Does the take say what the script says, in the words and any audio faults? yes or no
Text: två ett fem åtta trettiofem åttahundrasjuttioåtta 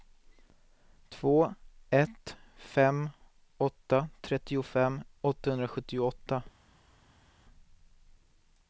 yes